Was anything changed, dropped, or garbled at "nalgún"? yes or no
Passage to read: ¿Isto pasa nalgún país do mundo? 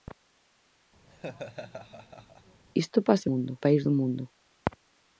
yes